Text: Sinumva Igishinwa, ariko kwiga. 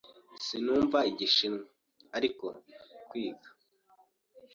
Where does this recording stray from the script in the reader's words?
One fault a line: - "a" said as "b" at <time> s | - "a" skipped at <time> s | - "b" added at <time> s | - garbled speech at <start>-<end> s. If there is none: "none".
none